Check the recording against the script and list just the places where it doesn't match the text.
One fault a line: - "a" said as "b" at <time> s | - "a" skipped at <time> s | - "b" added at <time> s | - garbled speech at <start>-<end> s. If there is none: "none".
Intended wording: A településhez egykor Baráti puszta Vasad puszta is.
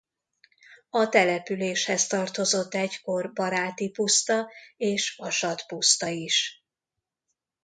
- "tartozott" added at 2.1 s
- "és" added at 4.8 s